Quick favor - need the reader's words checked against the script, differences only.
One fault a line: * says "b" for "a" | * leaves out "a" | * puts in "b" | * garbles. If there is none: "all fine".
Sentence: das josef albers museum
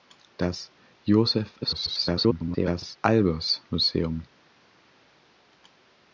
* garbles